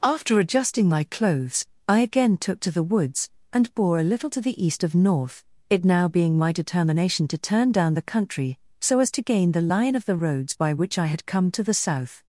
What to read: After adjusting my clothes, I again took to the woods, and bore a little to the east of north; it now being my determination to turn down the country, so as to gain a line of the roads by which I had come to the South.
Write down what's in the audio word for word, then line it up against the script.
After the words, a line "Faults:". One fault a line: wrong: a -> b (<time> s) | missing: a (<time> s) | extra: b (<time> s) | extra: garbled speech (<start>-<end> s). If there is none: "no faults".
After adjusting my clothes, I again took to the woods, and bore a little to the east of north; it now being my determination to turn down the country, so as to gain the line of the roads by which I had come to the South.
Faults:
wrong: a -> the (9.5 s)